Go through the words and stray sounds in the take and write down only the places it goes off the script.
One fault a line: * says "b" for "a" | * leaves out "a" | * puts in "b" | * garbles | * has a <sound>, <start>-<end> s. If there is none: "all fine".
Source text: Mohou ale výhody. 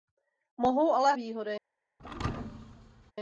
* has a thud, 2.0-3.1 s